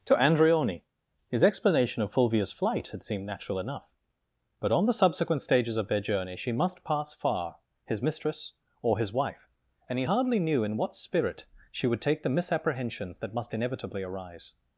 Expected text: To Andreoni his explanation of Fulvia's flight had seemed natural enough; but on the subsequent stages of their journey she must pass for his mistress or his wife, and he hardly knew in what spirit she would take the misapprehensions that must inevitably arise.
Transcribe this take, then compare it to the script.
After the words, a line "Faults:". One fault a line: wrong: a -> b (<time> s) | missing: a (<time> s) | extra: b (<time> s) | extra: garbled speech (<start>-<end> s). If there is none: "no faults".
To Andreoni his explanation of Fulvia's flight had seemed natural enough; but on the subsequent stages of their journey she must pass far his mistress or his wife, and he hardly knew in what spirit she would take the misapprehensions that must inevitably arise.
Faults:
wrong: for -> far (7.1 s)